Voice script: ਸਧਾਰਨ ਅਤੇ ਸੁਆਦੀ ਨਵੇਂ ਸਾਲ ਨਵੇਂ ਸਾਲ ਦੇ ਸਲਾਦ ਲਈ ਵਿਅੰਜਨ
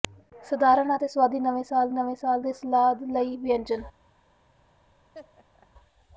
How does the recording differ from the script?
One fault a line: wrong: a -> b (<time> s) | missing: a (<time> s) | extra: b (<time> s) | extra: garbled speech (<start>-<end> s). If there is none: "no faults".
no faults